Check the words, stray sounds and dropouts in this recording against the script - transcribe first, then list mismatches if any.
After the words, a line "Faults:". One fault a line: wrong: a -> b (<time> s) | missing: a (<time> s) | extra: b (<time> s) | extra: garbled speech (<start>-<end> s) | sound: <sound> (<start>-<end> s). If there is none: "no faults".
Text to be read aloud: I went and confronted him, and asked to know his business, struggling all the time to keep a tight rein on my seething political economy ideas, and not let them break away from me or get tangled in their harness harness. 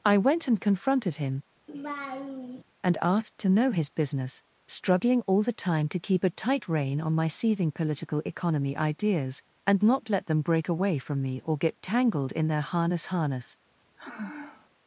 I went and confronted him, and asked to know his business, struggling all the time to keep a tight rein on my seething political economy ideas, and not let them break away from me or get tangled in their harness harness.
Faults:
sound: laugh (1.7-2.6 s)
sound: sigh (14.0-14.7 s)